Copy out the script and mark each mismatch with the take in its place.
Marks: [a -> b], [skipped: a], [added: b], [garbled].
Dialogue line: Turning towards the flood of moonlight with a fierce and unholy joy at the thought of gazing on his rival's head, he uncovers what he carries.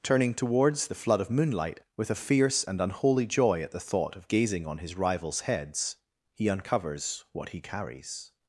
Turning towards the flood of moonlight with a fierce and unholy joy at the thought of gazing on his rival's [head, -> heads] he uncovers what he carries.